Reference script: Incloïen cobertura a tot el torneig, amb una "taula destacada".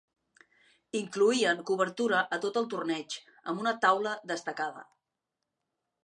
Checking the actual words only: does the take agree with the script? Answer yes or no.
yes